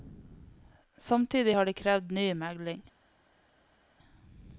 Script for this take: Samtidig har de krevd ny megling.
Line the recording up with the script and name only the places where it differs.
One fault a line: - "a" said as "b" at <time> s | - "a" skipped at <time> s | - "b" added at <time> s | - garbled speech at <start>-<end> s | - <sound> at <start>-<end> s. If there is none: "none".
none